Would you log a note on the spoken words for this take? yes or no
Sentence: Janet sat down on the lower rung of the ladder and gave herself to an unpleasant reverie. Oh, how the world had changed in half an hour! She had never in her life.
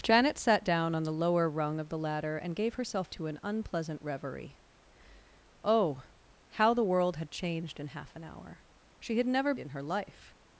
no